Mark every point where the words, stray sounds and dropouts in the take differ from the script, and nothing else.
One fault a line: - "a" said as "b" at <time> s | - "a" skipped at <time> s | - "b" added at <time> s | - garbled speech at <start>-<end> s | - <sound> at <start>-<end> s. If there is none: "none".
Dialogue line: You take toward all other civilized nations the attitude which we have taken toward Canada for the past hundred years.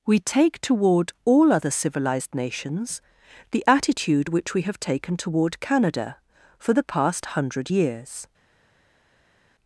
- "You" said as "We" at 0.1 s